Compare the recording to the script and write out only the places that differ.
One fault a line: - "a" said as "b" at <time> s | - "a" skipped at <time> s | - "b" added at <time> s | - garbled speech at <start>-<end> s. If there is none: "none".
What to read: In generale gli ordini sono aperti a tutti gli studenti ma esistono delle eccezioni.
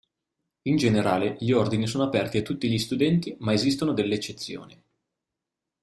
none